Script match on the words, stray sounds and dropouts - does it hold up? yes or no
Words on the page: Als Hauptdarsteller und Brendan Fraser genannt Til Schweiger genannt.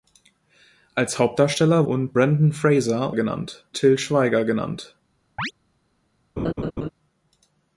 no